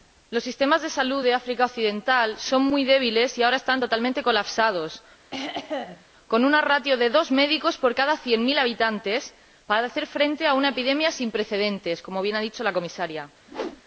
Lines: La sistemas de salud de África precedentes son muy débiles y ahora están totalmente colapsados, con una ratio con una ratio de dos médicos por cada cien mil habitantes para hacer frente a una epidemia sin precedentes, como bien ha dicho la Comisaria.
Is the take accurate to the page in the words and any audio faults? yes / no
no